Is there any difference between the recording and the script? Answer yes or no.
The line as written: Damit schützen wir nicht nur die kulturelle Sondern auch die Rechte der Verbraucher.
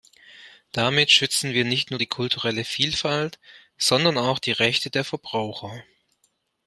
yes